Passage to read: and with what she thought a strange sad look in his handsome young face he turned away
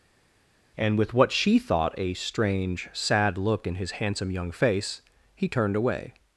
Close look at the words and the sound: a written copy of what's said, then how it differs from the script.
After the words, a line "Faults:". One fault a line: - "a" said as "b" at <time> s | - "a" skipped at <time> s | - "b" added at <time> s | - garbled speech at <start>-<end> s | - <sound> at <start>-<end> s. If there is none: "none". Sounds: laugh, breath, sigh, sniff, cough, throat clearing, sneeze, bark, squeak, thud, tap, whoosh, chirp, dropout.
and with what she thought a strange sad look in his handsome young face he turned away
Faults:
none